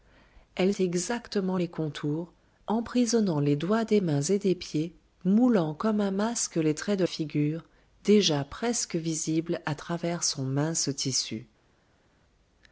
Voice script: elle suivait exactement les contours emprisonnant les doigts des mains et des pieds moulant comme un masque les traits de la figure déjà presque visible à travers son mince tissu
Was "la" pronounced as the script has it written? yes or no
no